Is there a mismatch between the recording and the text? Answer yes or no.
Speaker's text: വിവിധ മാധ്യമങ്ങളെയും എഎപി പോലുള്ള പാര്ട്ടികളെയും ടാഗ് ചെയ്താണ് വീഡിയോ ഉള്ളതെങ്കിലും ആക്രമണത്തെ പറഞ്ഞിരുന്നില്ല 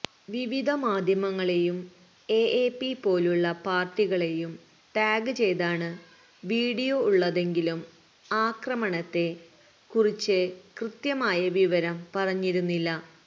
yes